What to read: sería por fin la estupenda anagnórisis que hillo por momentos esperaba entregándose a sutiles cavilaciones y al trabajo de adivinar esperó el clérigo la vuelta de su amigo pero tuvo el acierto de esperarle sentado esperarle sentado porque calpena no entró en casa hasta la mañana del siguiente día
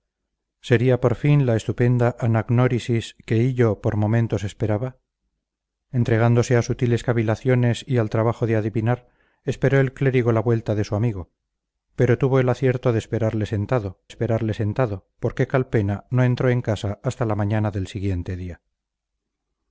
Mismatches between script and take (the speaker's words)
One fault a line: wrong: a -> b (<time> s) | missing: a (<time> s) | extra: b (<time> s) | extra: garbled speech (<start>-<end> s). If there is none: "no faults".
no faults